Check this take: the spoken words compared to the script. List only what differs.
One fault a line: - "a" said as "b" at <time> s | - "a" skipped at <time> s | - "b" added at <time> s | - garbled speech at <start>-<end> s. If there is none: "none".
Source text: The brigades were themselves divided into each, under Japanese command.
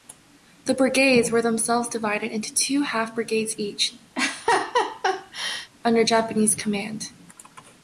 - "two half brigades" added at 2.5 s